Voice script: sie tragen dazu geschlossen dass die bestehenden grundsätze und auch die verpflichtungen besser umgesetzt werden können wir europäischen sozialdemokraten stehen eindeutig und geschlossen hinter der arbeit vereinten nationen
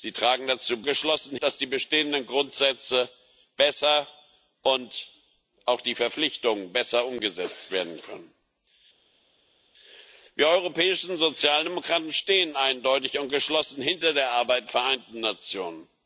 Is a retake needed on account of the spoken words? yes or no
no